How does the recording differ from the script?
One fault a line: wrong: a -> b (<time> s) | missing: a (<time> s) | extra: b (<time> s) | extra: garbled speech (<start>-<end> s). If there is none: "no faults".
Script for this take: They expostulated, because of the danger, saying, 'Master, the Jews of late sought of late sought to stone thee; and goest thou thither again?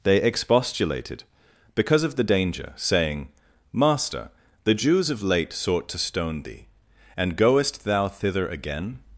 missing: of late sought (5.9 s)